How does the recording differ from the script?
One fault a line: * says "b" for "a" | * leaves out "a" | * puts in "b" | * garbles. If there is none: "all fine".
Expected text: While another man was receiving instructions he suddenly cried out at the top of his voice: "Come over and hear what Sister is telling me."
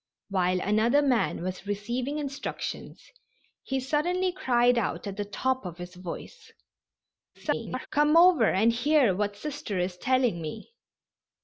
* garbles